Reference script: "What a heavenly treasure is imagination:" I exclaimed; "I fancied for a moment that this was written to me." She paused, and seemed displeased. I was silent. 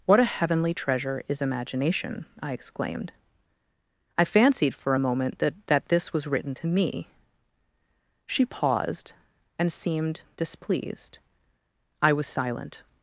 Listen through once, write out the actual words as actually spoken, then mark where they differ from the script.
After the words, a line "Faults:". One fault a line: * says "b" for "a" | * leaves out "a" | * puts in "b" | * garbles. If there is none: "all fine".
"What a heavenly treasure is imagination:" I exclaimed; "I fancied for a moment that that this was written to me." She paused, and seemed displeased. I was silent.
Faults:
* puts in "that"